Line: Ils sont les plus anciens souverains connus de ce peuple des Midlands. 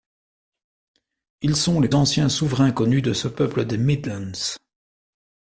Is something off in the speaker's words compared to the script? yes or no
yes